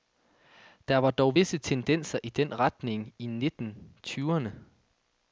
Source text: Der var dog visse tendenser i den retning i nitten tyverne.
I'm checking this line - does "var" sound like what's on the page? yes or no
yes